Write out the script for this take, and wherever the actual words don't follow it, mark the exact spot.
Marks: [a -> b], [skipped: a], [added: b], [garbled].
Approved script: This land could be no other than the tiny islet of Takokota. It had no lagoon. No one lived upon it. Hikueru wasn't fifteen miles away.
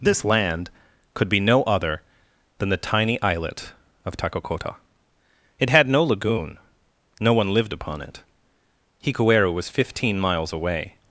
This land could be no other than the tiny islet of Takokota. It had no lagoon. No one lived upon it. Hikueru [wasn't -> was] fifteen miles away.